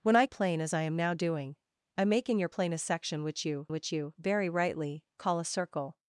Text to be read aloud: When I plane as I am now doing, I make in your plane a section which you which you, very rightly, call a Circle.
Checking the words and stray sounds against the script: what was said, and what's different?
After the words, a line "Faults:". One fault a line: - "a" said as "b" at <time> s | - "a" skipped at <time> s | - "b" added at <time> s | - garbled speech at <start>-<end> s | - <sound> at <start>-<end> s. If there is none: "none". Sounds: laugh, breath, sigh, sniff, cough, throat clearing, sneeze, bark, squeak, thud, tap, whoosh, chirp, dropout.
When I plane as I am now doing, I make in your plane a section which you which you, very rightly, call a Circle.
Faults:
none